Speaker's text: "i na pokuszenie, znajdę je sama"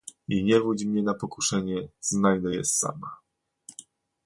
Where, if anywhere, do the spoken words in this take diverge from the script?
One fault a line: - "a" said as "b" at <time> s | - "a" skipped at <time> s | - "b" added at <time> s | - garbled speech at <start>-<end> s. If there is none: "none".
- "nie wódź mnie" added at 0.4 s